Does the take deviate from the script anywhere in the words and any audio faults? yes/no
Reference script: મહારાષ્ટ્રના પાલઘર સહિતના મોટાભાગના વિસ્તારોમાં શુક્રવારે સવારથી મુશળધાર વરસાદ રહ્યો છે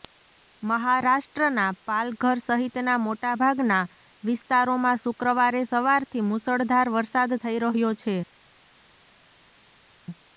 yes